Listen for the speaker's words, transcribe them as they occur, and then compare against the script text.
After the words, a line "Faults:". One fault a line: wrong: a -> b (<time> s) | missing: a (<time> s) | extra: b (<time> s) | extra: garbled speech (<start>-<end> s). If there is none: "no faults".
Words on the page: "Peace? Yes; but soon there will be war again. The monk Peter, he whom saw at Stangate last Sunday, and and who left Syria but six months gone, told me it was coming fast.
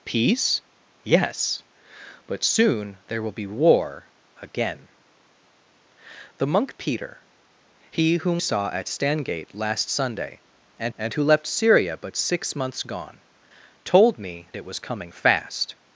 "Peace? Yes; but soon there will be war again. The monk Peter, he whom saw at Stangate last Sunday, and and who left Syria but six months gone, told me it was coming fast.
Faults:
no faults